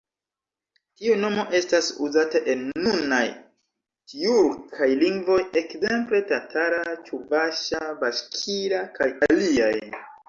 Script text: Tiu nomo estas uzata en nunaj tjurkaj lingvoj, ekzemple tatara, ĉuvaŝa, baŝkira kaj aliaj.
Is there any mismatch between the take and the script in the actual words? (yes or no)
no